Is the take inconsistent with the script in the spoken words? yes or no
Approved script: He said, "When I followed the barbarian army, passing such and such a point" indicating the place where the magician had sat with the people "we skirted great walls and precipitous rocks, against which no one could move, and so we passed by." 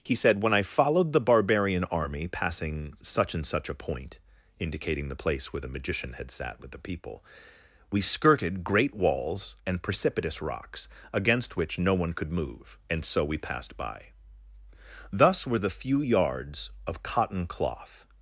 yes